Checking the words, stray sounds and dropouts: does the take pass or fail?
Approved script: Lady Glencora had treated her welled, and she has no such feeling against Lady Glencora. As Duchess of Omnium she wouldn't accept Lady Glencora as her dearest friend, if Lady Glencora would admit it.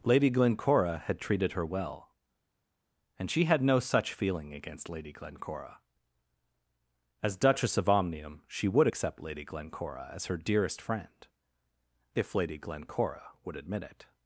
fail